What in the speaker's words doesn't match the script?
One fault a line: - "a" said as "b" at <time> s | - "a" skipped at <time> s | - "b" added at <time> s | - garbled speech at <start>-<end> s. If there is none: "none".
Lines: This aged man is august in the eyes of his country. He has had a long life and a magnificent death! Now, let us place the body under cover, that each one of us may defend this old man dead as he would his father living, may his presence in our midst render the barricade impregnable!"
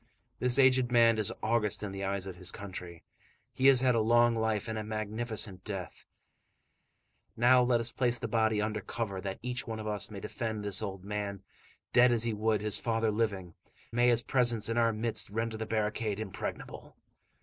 none